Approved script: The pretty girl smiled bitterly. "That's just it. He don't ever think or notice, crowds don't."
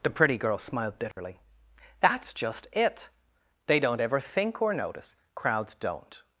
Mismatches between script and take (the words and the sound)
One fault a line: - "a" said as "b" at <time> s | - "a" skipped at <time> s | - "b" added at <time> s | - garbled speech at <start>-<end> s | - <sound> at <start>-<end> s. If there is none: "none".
- dropout at 1.1-1.2 s
- "He" said as "They" at 3.7 s